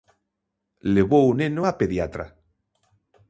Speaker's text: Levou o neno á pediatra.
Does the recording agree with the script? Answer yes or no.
yes